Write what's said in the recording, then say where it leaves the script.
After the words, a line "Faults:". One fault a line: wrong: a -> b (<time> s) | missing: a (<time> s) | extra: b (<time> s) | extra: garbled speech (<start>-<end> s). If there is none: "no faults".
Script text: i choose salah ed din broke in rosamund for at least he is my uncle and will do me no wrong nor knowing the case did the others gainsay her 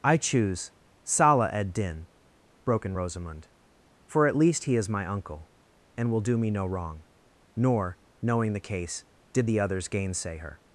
i choose salah ed din broke in rosamund for at least he is my uncle and will do me no wrong nor knowing the case did the others gainsay her
Faults:
no faults